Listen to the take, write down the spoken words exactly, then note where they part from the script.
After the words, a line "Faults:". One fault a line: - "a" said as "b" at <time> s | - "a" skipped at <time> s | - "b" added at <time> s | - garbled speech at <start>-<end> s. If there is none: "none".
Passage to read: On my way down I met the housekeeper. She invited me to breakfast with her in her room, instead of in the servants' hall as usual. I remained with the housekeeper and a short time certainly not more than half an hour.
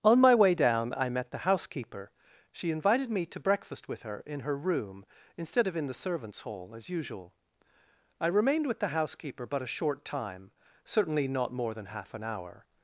On my way down I met the housekeeper. She invited me to breakfast with her in her room, instead of in the servants' hall as usual. I remained with the housekeeper but a short time certainly not more than half an hour.
Faults:
- "and" said as "but" at 9.5 s